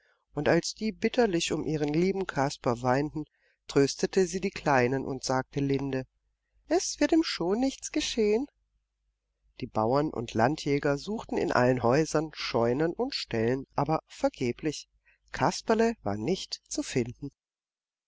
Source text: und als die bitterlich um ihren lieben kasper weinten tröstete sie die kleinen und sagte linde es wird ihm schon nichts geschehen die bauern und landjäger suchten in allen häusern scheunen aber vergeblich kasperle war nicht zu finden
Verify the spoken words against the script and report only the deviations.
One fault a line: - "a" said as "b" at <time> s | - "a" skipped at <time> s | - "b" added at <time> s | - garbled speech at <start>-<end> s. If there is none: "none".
- "und ställen" added at 12.9 s